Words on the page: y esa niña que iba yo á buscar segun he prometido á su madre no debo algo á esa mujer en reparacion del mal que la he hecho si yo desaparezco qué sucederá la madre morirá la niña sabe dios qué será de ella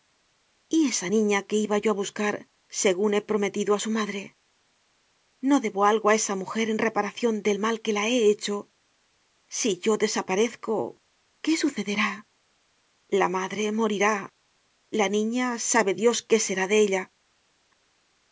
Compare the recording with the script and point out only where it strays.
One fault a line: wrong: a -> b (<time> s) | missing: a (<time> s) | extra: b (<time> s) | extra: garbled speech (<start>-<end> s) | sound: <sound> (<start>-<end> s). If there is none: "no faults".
no faults